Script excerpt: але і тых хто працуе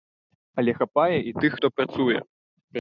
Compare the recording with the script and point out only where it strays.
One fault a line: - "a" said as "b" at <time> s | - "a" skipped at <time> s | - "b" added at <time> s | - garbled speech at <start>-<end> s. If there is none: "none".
- "хапае" added at 0.8 s